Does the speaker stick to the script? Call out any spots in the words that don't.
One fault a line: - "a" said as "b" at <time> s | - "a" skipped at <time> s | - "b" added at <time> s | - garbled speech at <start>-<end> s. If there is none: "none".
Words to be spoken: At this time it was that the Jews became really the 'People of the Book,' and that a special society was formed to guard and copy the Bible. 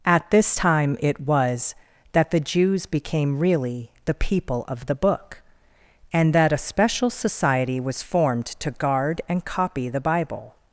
none